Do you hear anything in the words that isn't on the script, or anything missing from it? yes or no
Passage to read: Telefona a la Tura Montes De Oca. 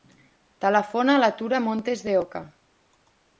no